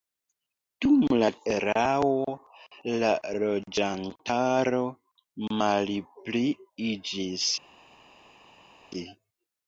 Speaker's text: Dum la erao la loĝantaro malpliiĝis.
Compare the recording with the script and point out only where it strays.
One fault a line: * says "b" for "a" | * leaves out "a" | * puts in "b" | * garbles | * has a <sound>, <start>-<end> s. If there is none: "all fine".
all fine